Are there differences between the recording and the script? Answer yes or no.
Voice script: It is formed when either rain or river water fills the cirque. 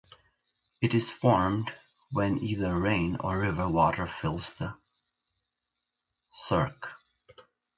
no